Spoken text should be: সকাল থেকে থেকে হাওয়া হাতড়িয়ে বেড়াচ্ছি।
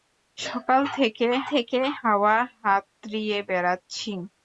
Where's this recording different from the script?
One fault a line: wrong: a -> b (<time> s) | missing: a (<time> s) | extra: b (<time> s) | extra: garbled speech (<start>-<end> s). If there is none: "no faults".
no faults